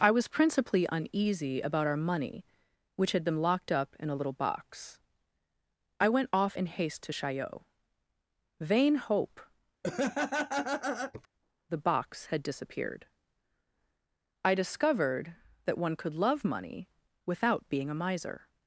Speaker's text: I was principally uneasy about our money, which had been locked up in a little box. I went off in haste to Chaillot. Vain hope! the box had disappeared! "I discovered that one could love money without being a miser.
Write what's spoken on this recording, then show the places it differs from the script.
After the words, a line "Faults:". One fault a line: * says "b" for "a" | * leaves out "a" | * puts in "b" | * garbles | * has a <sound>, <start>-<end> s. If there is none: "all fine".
I was principally uneasy about our money, which had been locked up in a little box. I went off in haste to Chaillot. Vain hope! the box had disappeared! "I discovered that one could love money without being a miser.
Faults:
* has a laugh, 9.8-11.3 s